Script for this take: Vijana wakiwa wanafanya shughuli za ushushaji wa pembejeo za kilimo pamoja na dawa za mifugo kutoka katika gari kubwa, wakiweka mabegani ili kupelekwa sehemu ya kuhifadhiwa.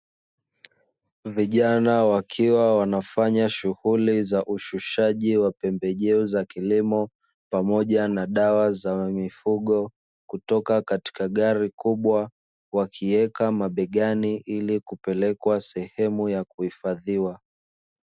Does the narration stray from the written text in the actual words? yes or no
no